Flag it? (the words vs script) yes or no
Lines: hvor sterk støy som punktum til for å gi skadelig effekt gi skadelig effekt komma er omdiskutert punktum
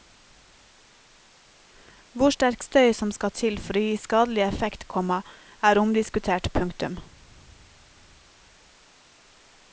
yes